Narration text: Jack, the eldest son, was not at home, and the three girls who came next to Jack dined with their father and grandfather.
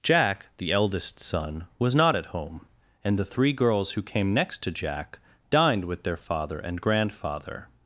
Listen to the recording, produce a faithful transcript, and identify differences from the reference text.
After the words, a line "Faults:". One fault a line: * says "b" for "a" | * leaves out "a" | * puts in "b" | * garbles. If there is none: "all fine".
Jack, the eldest son, was not at home, and the three girls who came next to Jack dined with their father and grandfather.
Faults:
all fine